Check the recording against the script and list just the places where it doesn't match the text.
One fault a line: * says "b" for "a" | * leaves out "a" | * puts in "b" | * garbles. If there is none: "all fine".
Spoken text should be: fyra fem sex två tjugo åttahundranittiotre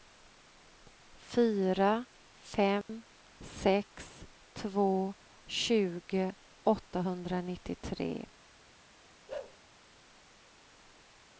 all fine